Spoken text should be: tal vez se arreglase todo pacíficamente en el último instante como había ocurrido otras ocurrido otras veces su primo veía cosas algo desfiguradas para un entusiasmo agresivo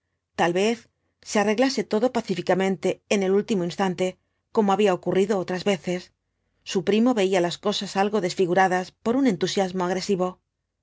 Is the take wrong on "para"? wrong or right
wrong